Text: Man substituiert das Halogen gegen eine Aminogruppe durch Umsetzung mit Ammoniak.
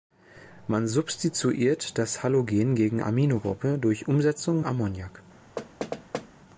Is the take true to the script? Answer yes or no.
no